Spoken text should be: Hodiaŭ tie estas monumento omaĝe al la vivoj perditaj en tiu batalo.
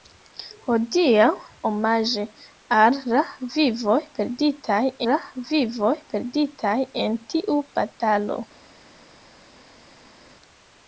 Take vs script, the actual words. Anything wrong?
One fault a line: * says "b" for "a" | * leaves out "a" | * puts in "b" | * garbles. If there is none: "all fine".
* says "omaĝe al la vivoj perditaj" for "tie estas monumento omaĝe al"